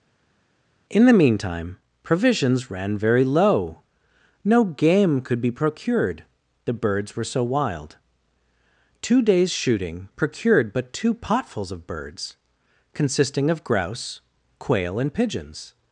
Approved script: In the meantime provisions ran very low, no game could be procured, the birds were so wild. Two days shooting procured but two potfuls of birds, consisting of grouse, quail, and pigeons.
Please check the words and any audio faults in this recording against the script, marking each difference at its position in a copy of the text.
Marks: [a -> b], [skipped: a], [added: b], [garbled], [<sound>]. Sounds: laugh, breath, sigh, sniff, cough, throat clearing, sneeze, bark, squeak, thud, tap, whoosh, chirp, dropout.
In the meantime provisions ran very low, no game could be procured, the birds were so wild. Two days shooting procured but two potfuls of birds, consisting of grouse, quail, and pigeons.